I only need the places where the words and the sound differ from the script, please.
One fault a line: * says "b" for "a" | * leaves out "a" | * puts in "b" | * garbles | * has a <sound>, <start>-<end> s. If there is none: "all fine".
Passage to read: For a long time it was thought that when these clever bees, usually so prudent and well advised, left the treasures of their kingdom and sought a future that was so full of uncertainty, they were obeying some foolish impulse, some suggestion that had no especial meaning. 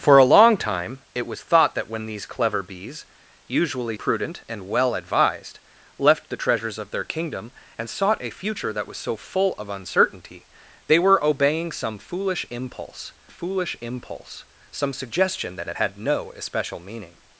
* leaves out "so"
* puts in "foolish impulse"
* puts in "that"